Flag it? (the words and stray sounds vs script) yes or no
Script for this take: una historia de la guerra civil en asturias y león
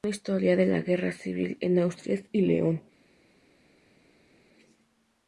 no